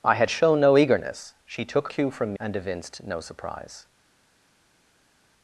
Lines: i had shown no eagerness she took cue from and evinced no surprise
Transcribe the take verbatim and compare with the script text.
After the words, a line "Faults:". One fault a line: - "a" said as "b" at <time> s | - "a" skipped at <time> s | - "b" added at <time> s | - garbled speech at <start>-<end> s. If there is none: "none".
i had shown no eagerness she took cue from and evinced no surprise
Faults:
none